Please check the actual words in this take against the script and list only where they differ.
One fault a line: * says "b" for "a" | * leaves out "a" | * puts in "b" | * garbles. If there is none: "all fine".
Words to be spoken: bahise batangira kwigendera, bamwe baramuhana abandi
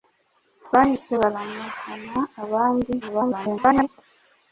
* leaves out "batangira kwigendera bamwe"
* garbles